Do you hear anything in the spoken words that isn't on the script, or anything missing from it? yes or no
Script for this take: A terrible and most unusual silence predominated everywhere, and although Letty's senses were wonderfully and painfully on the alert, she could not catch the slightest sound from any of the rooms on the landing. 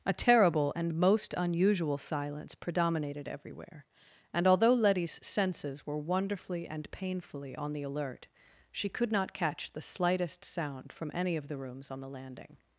no